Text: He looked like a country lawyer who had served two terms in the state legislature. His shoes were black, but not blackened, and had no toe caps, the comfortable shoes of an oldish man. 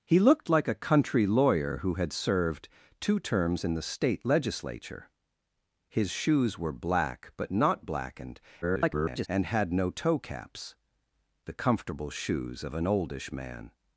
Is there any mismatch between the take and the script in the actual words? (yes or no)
yes